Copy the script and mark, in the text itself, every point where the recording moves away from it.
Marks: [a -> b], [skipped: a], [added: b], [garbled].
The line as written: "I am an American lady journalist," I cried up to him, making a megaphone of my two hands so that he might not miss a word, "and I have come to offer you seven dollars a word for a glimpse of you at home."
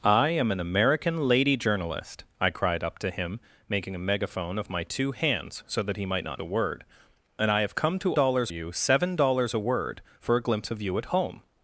"I am an American lady journalist," I cried up to him, making a megaphone of my two hands so that he might not [skipped: miss] a word, "and I have come to [offer -> dollars] you seven dollars a word for a glimpse of you at home."